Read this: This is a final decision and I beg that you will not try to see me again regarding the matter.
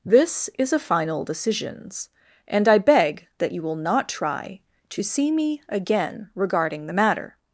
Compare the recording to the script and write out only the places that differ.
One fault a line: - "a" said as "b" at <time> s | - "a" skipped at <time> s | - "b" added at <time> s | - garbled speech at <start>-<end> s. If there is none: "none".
- "decision" said as "decisions" at 1.2 s